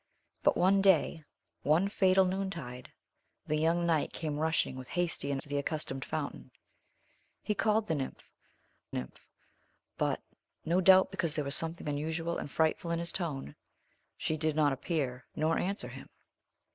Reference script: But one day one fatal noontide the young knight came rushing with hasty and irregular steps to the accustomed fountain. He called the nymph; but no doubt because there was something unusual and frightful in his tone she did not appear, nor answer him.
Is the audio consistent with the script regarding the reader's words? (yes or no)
no